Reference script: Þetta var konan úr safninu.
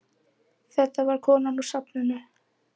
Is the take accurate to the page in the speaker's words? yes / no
yes